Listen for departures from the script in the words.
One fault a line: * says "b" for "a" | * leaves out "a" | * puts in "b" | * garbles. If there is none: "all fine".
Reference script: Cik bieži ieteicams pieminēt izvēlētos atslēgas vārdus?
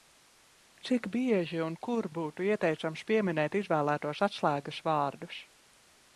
* puts in "un kur būtu"